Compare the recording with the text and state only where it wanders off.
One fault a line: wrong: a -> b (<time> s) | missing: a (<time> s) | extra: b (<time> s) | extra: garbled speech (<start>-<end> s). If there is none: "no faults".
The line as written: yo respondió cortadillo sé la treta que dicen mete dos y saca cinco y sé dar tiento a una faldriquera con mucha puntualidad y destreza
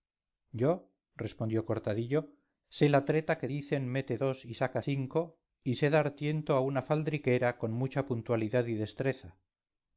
no faults